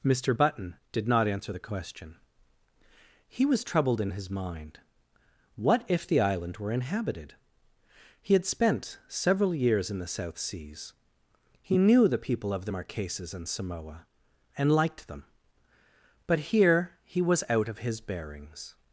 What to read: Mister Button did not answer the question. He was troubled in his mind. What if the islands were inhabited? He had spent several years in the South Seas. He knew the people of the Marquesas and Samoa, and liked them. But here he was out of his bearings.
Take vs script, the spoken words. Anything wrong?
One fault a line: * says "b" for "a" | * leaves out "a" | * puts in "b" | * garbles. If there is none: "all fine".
* says "island" for "islands"